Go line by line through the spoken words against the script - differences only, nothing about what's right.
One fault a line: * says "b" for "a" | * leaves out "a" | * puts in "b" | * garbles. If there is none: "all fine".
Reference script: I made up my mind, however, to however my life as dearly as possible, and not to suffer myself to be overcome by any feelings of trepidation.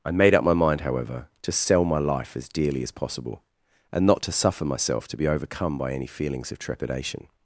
* says "sell" for "however"